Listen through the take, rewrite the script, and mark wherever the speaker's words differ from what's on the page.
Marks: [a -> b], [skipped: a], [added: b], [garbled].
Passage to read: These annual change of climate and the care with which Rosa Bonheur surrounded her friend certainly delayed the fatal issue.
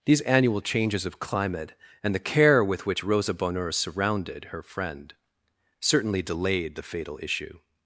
These annual [change -> changes] of climate and the care with which Rosa Bonheur surrounded her friend certainly delayed the fatal issue.